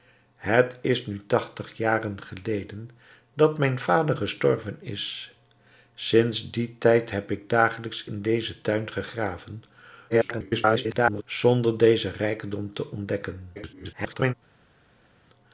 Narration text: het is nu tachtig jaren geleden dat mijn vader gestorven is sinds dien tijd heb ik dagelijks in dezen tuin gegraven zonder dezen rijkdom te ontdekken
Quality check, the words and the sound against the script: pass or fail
fail